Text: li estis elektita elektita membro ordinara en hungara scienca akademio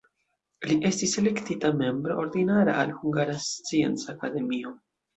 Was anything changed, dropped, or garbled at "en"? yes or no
yes